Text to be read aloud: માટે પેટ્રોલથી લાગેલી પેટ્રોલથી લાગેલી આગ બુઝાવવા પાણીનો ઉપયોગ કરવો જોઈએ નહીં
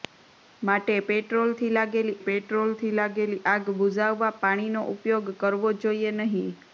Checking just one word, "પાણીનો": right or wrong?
right